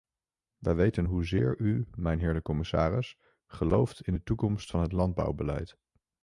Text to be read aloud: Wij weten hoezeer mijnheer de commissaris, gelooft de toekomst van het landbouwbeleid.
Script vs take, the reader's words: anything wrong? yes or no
yes